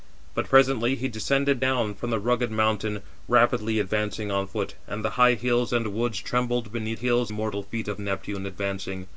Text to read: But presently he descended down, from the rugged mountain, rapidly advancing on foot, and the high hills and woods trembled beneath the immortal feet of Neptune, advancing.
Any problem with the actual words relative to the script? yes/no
yes